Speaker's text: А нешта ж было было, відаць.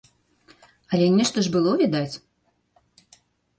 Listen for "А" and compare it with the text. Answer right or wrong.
wrong